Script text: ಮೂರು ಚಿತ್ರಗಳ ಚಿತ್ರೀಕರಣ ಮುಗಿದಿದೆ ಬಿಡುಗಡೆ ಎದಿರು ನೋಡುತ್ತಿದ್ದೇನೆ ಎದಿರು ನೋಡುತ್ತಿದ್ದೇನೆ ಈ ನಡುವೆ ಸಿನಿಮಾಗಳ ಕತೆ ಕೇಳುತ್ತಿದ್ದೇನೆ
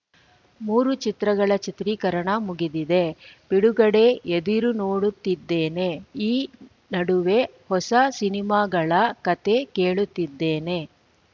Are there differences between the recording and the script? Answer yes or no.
yes